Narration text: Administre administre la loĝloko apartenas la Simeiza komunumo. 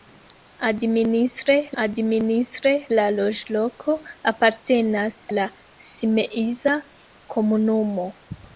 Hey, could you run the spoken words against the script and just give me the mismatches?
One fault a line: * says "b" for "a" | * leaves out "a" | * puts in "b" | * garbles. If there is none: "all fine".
all fine